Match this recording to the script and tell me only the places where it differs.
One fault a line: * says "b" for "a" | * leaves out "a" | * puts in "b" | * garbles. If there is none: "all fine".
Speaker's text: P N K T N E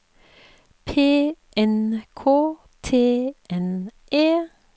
all fine